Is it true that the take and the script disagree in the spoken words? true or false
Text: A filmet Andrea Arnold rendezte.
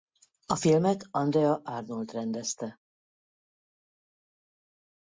false